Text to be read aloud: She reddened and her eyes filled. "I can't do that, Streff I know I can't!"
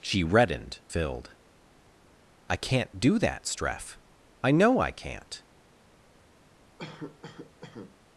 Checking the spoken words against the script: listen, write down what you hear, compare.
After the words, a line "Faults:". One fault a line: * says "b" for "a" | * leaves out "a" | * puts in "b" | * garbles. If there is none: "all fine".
She reddened filled. "I can't do that, Streff I know I can't!"
Faults:
* leaves out "and her eyes"